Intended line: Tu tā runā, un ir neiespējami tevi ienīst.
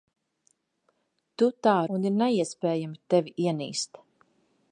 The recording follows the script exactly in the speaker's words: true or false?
false